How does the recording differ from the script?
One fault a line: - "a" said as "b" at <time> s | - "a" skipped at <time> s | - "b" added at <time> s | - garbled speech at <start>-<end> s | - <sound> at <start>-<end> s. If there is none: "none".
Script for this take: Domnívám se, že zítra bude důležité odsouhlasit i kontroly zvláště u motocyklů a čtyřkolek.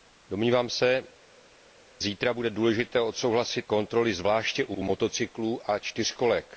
- "že" skipped at 1.0 s
- "i" skipped at 3.7 s
- "u" added at 4.7 s